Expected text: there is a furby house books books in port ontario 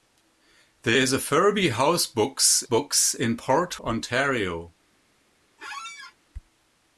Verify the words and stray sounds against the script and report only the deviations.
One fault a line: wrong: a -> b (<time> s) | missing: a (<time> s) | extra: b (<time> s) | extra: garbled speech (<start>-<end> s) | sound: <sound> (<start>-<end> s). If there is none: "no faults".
sound: squeak (5.6-6.1 s)